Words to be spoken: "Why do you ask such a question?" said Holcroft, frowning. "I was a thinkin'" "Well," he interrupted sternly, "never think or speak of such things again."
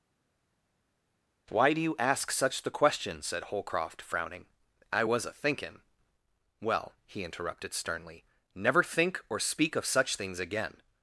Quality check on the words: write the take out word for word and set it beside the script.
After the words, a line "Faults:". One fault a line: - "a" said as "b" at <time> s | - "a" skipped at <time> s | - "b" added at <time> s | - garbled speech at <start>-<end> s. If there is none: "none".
"Why do you ask such the question?" said Holcroft, frowning. "I was a thinkin'" "Well," he interrupted sternly, "never think or speak of such things again."
Faults:
- "a" said as "the" at 2.6 s